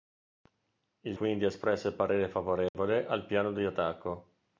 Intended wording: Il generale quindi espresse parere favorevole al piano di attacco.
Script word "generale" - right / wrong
wrong